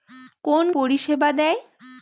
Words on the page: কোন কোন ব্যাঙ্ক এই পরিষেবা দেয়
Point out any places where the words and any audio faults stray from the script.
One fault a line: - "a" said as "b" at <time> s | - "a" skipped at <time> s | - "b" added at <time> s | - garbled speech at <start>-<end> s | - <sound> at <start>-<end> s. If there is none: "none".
- "কোন ব্যাঙ্ক এই" skipped at 0.7 s